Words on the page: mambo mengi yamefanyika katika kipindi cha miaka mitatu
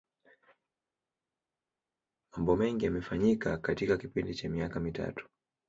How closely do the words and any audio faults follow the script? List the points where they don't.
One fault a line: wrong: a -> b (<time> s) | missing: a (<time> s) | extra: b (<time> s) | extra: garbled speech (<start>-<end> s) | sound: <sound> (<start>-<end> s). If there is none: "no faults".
no faults